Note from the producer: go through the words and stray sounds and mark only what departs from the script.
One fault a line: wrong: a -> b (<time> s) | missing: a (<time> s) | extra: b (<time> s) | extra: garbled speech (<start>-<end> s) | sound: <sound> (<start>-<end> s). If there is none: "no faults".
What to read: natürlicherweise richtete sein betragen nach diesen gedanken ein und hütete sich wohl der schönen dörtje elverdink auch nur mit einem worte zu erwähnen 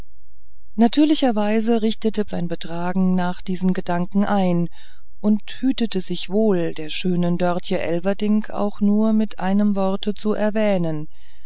no faults